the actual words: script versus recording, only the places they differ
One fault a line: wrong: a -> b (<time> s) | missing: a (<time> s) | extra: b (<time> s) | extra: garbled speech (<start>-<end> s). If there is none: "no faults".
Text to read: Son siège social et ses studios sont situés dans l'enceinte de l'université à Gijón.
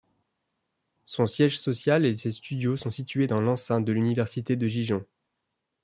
wrong: à -> de (4.5 s)